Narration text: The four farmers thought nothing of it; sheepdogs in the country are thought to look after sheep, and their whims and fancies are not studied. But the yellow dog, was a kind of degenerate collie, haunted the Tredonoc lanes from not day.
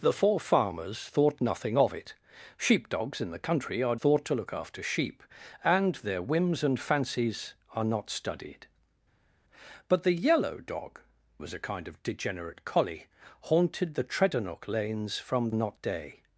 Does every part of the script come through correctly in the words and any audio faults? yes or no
yes